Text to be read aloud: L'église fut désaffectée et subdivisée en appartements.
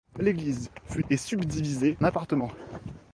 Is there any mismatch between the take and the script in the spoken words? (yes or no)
yes